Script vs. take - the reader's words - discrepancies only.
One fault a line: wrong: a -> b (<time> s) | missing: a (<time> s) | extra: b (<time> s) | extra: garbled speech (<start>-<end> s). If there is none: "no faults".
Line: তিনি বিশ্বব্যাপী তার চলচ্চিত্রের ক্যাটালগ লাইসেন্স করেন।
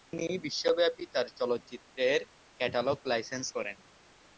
no faults